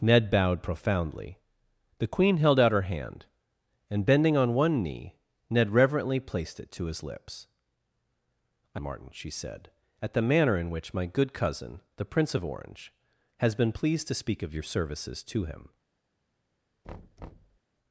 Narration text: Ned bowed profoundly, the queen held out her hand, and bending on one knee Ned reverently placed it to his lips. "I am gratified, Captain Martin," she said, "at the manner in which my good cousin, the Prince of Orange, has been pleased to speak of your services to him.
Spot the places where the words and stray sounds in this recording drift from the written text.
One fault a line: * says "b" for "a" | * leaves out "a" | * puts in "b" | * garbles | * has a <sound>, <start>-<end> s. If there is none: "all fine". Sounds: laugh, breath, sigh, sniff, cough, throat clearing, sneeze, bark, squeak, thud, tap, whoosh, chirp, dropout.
* leaves out "am gratified Captain"
* has a thud, 16.8-17.6 s